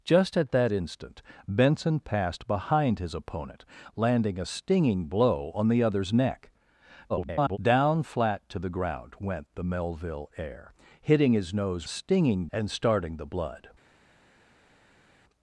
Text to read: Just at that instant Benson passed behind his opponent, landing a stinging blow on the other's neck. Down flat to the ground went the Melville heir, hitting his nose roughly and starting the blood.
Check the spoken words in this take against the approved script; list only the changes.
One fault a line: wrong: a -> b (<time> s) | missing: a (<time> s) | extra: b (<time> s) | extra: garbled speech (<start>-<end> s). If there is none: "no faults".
extra: garbled speech (7.1-7.6 s)
wrong: roughly -> stinging (11.9 s)